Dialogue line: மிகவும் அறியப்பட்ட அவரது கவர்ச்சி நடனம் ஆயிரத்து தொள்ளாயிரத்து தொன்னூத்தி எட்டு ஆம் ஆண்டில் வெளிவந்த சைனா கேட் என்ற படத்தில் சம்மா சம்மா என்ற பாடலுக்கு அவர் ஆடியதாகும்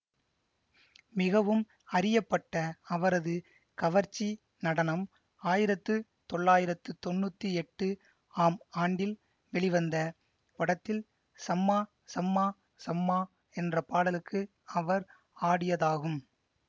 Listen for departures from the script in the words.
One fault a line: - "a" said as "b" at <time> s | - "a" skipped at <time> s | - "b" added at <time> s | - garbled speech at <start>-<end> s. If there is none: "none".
- "சைனா கேட் என்ற படத்தில்" said as "படத்தில் சம்மா" at 10.6 s